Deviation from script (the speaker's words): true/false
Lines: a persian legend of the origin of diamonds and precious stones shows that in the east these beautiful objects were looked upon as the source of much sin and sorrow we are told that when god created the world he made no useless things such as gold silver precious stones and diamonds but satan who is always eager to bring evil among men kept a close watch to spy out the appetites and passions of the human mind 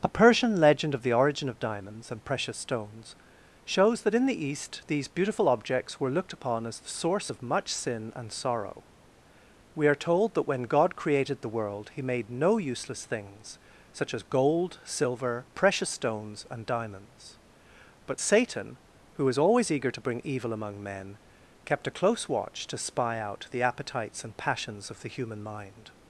true